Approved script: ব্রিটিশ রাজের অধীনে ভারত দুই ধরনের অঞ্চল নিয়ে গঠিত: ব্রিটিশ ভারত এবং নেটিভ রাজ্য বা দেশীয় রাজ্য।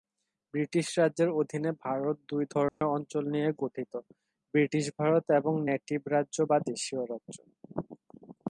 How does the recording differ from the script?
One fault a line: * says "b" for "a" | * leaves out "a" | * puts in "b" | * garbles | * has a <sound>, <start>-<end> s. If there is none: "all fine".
* has a dropout, 2.7-2.8 s